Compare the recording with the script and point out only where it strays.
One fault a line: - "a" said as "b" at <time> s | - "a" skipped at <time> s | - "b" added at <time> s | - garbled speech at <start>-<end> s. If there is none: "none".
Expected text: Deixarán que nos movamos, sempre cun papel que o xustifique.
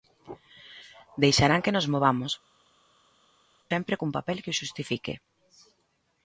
none